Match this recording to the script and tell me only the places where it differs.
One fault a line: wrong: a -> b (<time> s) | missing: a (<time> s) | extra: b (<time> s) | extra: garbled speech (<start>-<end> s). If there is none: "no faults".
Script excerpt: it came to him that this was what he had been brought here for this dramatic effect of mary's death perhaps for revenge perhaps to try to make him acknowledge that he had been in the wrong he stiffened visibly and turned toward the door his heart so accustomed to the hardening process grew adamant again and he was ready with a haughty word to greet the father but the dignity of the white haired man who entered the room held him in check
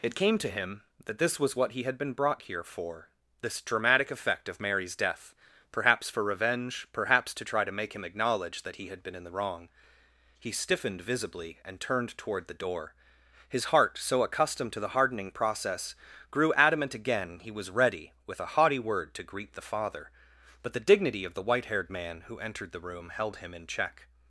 missing: and (17.4 s)